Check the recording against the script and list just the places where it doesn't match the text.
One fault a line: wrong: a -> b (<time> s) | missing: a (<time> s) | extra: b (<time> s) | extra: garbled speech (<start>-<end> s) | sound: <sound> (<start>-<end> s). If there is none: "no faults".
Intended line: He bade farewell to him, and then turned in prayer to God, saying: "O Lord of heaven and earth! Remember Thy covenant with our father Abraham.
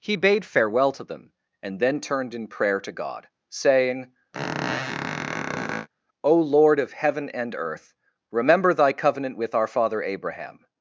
wrong: him -> them (1.0 s)
sound: squeak (4.3-5.9 s)